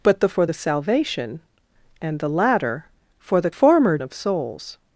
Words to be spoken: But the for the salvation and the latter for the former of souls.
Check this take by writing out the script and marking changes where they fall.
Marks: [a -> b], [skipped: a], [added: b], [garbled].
But the for the salvation and the latter for the former of souls.